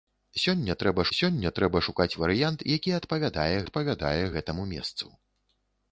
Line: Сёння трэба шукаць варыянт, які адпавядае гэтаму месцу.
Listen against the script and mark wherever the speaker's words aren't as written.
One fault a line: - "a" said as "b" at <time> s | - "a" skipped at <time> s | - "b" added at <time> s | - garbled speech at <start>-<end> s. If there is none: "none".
- "сёння трэба" added at 1.2 s
- "адпавядае" added at 3.6 s